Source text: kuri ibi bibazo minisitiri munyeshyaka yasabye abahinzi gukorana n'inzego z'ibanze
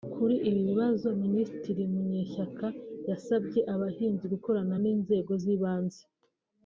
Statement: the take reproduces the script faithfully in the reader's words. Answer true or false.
true